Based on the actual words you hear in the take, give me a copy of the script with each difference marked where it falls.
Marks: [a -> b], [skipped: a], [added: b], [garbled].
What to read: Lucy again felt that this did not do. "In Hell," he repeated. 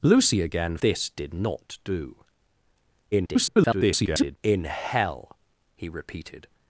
Lucy again [skipped: felt that] this did not do. [garbled] "In Hell," he repeated.